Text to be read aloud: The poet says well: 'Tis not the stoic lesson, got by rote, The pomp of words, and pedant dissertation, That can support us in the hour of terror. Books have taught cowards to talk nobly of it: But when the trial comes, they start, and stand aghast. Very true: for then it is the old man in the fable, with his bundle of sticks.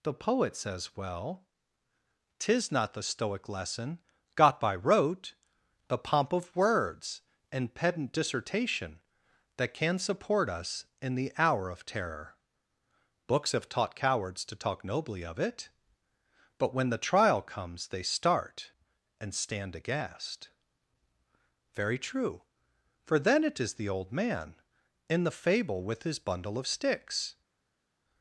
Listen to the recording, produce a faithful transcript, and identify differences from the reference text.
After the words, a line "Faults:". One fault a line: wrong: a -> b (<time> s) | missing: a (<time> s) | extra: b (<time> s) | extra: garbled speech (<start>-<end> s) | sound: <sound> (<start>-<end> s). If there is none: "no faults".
The poet says well: 'Tis not the stoic lesson, got by rote, The pomp of words, and pedant dissertation, That can support us in the hour of terror. Books have taught cowards to talk nobly of it: But when the trial comes, they start, and stand aghast. Very true: for then it is the old man in the fable, with his bundle of sticks.
Faults:
no faults